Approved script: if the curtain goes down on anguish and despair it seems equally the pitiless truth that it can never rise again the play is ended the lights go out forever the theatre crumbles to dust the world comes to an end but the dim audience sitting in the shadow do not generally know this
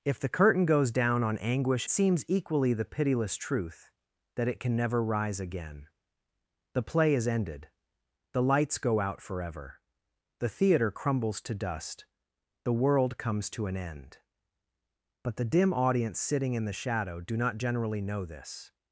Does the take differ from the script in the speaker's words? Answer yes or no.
yes